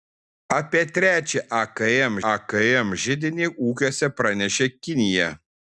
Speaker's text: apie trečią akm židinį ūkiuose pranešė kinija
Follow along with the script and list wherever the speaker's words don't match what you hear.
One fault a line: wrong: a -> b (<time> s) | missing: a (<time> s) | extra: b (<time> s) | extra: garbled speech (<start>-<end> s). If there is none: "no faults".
extra: akm (2.3 s)